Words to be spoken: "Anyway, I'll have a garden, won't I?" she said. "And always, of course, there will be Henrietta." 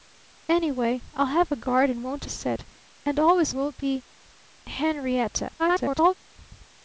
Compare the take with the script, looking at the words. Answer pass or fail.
fail